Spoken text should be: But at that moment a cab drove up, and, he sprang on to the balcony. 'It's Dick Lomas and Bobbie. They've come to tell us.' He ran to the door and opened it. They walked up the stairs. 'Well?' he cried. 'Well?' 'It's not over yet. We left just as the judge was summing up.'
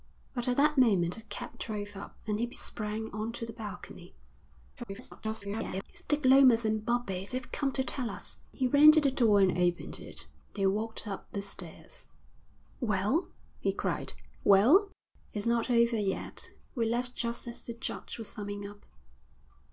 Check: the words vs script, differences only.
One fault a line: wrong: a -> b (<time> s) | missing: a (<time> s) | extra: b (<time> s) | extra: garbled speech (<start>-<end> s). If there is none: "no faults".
extra: garbled speech (4.8-5.8 s)